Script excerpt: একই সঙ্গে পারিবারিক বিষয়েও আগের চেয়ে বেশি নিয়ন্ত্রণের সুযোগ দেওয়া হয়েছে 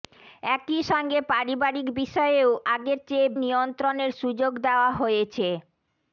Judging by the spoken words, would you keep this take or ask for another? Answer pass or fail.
fail